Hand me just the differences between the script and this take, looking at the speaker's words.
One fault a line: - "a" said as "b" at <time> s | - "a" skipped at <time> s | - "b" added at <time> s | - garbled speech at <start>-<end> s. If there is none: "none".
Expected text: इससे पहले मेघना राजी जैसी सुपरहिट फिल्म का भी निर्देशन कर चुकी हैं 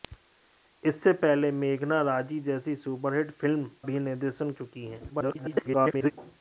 - "का" skipped at 3.6 s
- "कर" skipped at 4.5 s
- garbled speech at 5.1-6.1 s